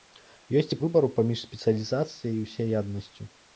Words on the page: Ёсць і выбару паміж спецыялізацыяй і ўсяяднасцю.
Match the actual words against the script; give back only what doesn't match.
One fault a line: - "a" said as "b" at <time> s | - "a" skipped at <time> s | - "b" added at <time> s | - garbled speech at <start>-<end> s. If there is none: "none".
none